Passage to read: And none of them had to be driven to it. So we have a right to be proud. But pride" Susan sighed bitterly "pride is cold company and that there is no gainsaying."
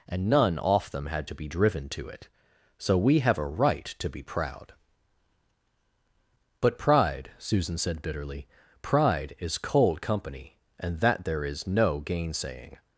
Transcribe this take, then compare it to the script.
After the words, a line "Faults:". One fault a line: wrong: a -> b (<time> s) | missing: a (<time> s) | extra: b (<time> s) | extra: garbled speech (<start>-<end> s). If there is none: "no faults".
And none off them had to be driven to it. So we have a right to be proud. But pride" Susan said bitterly "pride is cold company and that there is no gainsaying."
Faults:
wrong: of -> off (0.6 s)
wrong: sighed -> said (7.8 s)